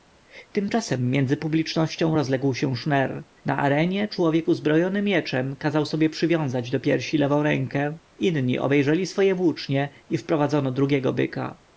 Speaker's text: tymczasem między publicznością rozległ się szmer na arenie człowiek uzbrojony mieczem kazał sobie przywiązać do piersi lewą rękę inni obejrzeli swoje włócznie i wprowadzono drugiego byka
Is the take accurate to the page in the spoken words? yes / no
yes